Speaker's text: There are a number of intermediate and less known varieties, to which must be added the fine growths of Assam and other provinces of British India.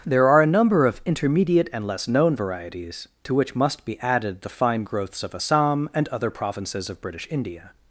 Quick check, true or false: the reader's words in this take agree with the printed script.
true